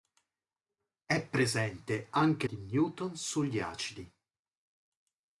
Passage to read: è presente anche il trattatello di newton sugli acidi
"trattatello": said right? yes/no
no